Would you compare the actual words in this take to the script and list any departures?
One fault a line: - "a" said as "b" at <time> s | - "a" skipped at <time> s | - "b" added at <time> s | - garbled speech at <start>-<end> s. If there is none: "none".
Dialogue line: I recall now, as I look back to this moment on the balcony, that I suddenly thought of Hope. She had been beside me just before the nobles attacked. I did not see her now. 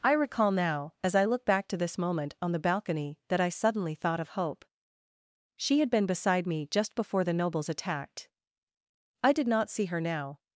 none